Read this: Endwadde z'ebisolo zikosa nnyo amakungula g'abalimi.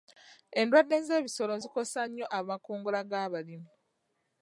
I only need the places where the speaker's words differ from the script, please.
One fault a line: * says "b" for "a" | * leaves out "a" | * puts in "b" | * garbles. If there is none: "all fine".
all fine